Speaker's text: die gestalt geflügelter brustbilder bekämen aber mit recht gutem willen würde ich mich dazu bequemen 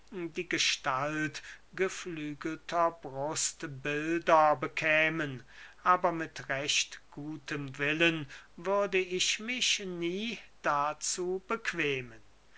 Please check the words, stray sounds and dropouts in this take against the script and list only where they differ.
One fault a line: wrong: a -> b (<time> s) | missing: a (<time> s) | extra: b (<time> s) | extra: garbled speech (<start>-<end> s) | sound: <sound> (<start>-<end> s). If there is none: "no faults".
extra: nie (9.8 s)